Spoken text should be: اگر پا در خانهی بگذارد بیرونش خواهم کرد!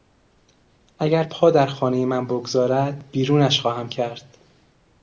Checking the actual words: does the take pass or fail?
fail